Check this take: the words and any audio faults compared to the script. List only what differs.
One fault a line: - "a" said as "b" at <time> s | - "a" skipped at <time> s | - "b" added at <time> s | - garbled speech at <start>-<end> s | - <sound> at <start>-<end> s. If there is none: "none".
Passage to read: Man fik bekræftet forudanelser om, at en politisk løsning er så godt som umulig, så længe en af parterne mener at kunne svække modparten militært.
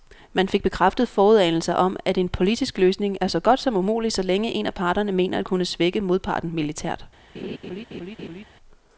- laugh at 7.3-8.4 s